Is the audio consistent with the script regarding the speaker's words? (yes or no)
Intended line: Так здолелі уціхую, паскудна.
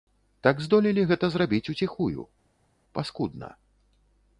no